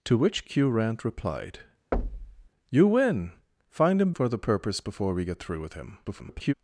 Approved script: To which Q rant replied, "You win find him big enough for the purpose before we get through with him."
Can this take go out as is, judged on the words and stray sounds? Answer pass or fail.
fail